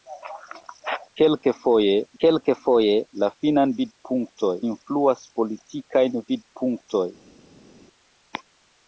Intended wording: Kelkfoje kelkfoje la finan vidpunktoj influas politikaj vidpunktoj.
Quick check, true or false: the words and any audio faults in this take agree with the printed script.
true